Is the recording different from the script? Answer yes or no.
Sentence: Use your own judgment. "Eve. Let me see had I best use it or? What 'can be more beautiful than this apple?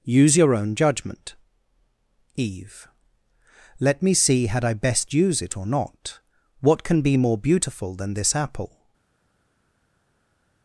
yes